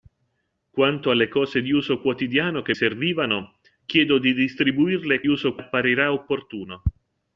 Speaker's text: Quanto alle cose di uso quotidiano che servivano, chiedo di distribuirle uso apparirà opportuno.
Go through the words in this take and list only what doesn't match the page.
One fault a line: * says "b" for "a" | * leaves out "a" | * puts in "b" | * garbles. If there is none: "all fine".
all fine